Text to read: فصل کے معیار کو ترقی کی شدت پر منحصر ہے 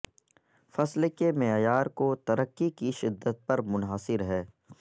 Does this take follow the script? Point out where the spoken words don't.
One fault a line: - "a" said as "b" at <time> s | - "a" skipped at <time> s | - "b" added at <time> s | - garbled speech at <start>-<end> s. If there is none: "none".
none